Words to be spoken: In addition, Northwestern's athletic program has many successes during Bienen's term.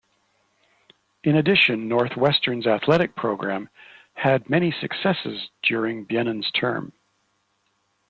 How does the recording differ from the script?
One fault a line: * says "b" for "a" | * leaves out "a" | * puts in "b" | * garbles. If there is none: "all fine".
* says "had" for "has"